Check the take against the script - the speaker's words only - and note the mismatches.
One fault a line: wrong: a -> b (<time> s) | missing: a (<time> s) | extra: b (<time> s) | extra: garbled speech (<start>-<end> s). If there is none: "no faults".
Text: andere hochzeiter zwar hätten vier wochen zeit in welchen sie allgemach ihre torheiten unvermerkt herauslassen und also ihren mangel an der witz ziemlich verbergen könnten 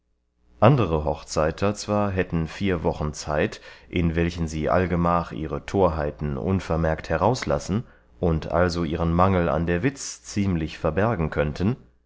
no faults